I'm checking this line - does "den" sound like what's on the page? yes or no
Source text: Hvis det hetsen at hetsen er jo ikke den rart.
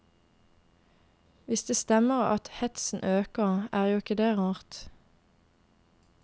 no